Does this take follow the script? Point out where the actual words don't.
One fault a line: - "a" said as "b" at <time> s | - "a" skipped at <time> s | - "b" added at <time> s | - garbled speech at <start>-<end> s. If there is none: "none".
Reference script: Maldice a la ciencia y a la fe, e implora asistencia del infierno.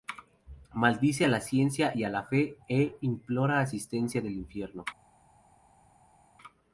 none